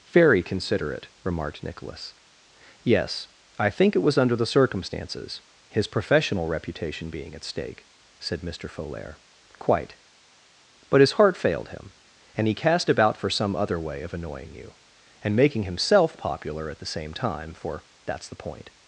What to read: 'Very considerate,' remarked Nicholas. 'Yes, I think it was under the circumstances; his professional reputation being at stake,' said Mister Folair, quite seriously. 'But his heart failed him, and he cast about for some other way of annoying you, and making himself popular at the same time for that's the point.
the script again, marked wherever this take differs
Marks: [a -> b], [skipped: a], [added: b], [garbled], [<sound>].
'Very considerate,' remarked Nicholas. 'Yes, I think it was under the circumstances; his professional reputation being at stake,' said Mister Folair, quite [skipped: seriously.] 'But his heart failed him, and he cast about for some other way of annoying you, and making himself popular at the same time for that's the point.